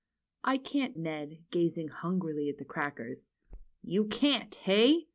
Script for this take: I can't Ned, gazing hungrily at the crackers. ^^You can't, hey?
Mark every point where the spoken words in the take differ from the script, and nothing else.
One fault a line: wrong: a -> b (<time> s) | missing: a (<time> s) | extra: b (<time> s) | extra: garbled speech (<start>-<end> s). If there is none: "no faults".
no faults